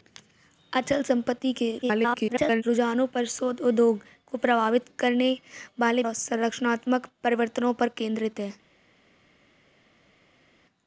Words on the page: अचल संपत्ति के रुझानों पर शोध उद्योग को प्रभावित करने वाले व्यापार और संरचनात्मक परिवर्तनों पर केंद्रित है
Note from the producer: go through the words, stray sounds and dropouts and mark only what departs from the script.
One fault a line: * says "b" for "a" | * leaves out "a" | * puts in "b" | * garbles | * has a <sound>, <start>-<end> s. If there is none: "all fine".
* garbles
* leaves out "व्यापार"